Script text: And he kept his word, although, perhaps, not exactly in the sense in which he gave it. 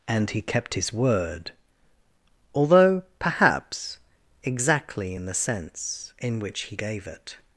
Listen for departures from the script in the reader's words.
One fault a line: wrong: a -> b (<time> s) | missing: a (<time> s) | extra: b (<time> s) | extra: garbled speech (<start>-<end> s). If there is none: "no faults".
missing: not (4.0 s)